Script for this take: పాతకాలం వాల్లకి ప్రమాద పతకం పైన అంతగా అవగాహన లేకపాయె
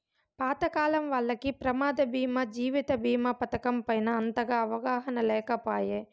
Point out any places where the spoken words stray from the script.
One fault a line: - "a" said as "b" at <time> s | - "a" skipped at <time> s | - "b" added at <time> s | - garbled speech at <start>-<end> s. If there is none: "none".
- "బీమా జీవిత బీమా" added at 2.1 s